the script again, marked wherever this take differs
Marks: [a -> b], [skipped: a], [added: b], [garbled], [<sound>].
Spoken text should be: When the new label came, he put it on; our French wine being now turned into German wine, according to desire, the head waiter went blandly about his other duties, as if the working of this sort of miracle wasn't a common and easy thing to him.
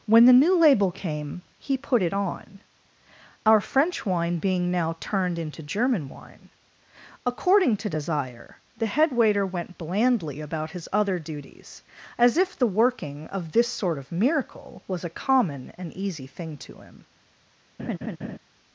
When the new label came, he put it on; our French wine being now turned into German wine, according to desire, the head waiter went blandly about his other duties, as if the working of this sort of miracle [wasn't -> was] a common and easy thing to him. [laugh]